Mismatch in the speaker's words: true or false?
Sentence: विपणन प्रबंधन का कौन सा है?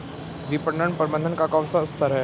true